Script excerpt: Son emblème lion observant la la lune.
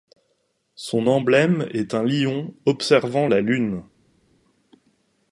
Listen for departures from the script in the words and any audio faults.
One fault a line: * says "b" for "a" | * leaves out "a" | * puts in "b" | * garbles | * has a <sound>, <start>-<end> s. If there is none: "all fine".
* puts in "est un"
* leaves out "la"